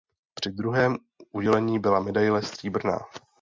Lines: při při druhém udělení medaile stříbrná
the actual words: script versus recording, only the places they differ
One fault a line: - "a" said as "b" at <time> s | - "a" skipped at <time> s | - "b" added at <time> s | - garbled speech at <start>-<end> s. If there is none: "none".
- "při" skipped at 0.5 s
- "byla" added at 1.8 s